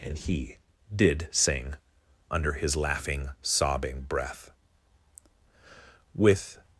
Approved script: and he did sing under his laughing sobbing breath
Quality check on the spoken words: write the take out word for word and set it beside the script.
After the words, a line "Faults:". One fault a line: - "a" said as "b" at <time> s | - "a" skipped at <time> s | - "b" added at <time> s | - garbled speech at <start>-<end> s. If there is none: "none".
and he did sing under his laughing sobbing breath with
Faults:
- "with" added at 6.1 s